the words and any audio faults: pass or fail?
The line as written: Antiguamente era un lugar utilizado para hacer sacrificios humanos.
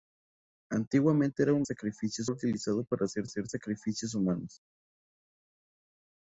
fail